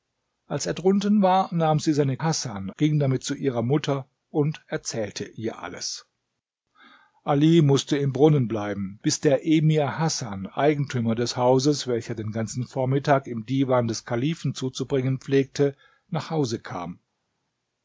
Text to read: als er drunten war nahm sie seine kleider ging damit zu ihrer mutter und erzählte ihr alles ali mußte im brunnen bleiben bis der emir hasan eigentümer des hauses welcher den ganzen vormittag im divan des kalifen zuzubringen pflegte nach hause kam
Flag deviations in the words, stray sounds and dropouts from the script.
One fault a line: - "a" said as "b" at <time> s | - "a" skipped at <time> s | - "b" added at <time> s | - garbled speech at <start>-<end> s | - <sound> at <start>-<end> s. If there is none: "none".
- "kleider" said as "hasan" at 2.2 s